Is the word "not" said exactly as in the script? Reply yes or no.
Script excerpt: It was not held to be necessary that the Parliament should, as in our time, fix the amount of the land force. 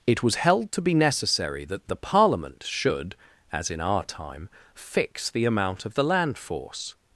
no